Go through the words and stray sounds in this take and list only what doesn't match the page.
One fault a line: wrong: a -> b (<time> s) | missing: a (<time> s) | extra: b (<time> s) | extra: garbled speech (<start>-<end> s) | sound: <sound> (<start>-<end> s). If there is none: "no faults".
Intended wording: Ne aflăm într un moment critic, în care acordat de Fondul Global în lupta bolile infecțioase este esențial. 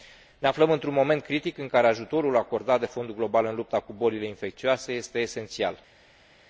extra: ajutorul (1.9 s)
extra: cu (3.8 s)